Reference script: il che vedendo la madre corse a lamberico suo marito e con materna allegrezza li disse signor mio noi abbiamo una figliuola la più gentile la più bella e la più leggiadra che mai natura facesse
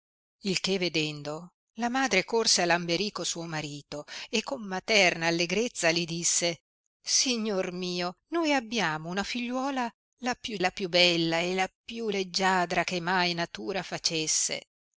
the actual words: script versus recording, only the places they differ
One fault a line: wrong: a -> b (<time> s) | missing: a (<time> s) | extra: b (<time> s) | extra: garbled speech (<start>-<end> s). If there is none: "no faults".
missing: gentile (10.6 s)